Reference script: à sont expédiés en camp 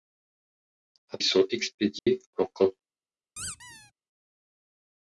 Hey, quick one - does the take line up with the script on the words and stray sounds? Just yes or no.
no